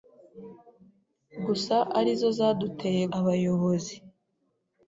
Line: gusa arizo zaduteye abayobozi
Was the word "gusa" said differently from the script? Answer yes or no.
no